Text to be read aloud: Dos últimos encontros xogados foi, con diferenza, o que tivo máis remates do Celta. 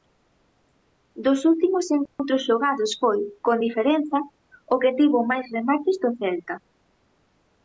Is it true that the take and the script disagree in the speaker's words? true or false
false